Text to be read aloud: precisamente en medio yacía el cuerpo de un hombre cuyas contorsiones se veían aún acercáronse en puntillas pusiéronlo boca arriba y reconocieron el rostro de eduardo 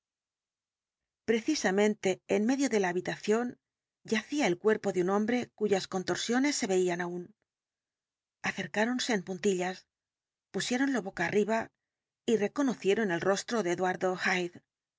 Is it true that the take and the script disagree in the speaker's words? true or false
true